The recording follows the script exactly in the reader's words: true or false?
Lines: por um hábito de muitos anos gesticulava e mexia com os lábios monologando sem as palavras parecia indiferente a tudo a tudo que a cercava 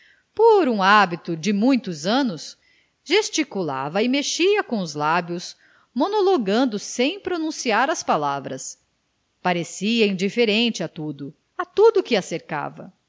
false